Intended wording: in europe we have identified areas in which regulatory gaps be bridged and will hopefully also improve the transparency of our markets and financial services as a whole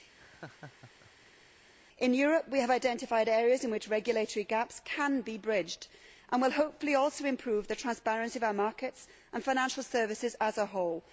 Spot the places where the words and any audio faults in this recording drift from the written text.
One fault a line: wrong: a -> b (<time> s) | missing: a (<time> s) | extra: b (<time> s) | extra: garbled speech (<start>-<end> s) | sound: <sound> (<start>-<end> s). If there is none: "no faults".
sound: laugh (0.2-1.5 s)
extra: can (4.8 s)